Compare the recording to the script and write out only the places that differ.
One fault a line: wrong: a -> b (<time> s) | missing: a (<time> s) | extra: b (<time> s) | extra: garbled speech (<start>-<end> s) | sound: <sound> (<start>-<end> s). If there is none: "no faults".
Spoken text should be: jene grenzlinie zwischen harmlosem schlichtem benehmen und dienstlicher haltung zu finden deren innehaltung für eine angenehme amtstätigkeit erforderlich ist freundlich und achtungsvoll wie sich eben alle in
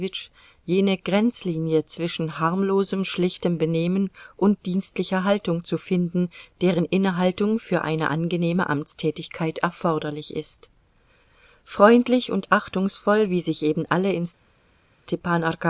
no faults